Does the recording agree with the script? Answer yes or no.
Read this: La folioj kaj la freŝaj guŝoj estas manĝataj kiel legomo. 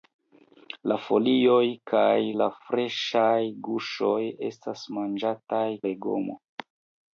no